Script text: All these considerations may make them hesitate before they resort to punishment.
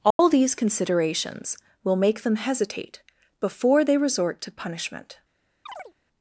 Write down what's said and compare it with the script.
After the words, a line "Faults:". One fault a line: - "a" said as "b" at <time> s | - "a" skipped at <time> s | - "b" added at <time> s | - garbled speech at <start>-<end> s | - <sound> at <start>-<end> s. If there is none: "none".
All these considerations will make them hesitate before they resort to punishment.
Faults:
- dropout at 0.1-0.2 s
- "may" said as "will" at 1.8 s
- chirp at 5.7-5.9 s